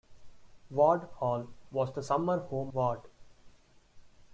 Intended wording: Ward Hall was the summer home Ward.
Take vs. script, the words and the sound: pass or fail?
pass